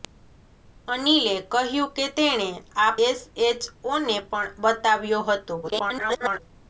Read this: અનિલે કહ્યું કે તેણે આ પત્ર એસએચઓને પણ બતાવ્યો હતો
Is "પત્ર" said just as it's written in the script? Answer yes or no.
no